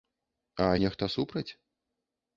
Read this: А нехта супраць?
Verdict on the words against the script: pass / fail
pass